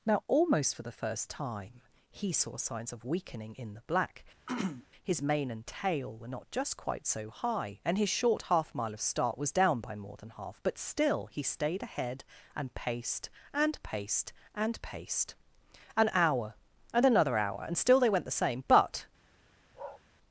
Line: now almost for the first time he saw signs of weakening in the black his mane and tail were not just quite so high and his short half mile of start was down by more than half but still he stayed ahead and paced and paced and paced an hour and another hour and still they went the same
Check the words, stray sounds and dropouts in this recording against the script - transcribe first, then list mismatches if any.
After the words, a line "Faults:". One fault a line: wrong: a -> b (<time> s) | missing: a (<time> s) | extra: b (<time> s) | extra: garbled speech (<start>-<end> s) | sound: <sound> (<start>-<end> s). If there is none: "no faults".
now almost for the first time he saw signs of weakening in the black his mane and tail were not just quite so high and his short half mile of start was down by more than half but still he stayed ahead and paced and paced and paced an hour and another hour and still they went the same but
Faults:
sound: throat clearing (4.5-4.9 s)
extra: but (18.7 s)
sound: bark (19.7-20.0 s)